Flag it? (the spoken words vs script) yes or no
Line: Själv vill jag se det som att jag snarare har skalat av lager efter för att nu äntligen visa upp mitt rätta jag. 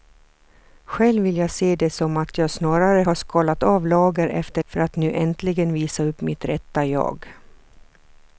no